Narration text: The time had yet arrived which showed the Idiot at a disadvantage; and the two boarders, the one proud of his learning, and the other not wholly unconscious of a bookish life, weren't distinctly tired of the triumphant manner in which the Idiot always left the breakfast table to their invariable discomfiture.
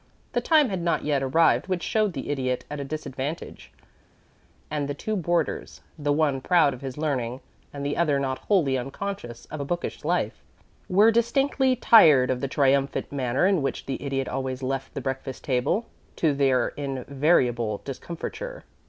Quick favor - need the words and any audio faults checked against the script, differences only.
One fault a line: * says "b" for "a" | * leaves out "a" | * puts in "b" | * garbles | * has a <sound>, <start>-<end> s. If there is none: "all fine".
* puts in "not"
* says "were" for "weren't"